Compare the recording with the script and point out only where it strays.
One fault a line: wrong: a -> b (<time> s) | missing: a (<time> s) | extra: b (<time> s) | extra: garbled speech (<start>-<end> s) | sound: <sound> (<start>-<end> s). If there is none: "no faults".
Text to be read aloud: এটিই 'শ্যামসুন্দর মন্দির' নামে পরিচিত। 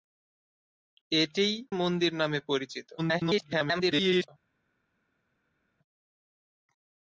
missing: শ্যামসুন্দর (1.5 s)
extra: garbled speech (3.0-4.3 s)